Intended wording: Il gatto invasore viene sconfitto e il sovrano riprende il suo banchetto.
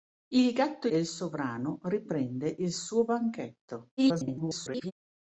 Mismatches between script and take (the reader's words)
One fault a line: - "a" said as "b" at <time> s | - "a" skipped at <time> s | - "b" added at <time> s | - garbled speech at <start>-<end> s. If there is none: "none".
- "invasore viene sconfitto" skipped at 0.9 s
- garbled speech at 4.0-4.9 s